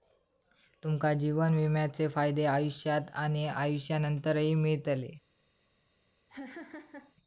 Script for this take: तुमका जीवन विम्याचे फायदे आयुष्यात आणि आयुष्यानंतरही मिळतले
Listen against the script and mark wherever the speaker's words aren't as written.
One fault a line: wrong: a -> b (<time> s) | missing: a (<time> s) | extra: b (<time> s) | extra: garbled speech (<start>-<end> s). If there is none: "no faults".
no faults